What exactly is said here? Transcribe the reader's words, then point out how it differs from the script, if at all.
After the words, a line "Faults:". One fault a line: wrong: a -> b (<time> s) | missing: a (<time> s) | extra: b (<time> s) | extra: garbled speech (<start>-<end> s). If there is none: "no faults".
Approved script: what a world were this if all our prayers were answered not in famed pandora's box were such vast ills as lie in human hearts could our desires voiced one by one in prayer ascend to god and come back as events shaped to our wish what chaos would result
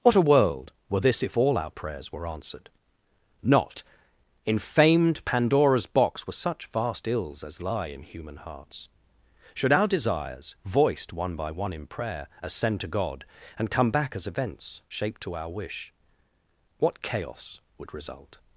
what a world were this if all our prayers were answered not in famed pandora's box were such vast ills as lie in human hearts should our desires voiced one by one in prayer ascend to god and come back as events shaped to our wish what chaos would result
Faults:
wrong: could -> should (9.5 s)